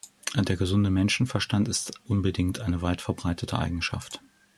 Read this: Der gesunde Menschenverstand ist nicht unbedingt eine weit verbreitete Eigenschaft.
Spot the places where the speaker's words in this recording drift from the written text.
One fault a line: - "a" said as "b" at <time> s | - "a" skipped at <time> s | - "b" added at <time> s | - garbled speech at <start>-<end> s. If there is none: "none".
- "nicht" skipped at 2.0 s